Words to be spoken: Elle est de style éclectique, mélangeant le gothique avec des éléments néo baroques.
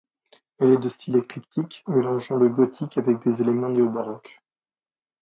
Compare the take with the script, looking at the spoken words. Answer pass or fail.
pass